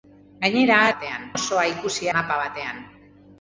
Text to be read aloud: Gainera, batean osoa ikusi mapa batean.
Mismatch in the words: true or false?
false